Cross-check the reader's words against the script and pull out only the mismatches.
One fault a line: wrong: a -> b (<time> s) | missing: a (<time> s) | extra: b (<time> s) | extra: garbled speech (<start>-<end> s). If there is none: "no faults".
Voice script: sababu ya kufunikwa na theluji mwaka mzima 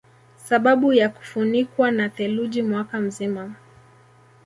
no faults